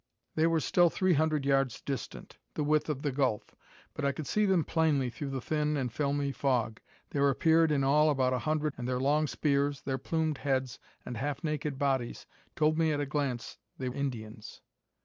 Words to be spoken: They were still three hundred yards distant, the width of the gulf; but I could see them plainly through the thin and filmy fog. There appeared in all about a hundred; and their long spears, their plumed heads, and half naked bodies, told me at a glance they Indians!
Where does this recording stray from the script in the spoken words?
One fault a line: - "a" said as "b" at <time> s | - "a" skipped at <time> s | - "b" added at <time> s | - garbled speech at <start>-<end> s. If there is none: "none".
none